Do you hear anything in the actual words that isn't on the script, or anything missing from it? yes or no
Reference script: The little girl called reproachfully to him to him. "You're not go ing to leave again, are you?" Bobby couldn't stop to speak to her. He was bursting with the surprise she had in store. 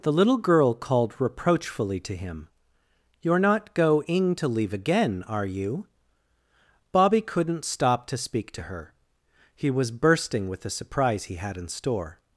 yes